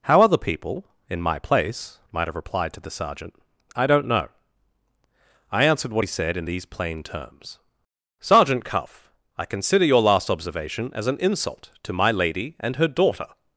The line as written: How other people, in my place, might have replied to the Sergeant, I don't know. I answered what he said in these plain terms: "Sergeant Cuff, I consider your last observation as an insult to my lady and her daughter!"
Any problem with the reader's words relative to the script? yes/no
no